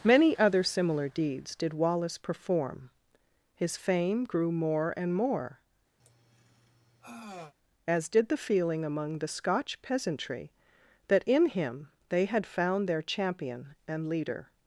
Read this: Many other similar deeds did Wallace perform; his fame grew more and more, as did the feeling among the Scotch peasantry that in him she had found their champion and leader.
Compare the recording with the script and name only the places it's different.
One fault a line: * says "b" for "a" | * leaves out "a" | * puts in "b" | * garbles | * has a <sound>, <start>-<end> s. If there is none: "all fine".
* has a sigh, 6.0-7.5 s
* says "they" for "she"